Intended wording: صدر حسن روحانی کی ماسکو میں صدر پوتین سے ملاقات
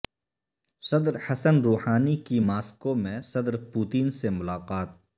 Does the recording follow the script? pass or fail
pass